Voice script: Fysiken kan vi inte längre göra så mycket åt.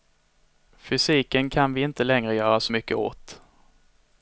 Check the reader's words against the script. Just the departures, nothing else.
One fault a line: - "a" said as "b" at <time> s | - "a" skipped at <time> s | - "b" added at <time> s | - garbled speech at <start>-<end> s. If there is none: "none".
none